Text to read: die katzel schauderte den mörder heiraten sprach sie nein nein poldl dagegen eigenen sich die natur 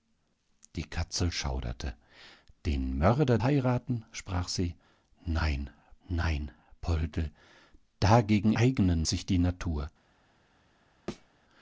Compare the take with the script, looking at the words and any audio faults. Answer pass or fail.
fail